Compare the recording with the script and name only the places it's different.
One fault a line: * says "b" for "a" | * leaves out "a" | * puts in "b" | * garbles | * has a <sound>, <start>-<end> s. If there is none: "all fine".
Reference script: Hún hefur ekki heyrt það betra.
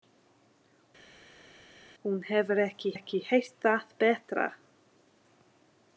* puts in "ekki"